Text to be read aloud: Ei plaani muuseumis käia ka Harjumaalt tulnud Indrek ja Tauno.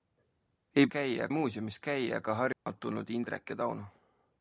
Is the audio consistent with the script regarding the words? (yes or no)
no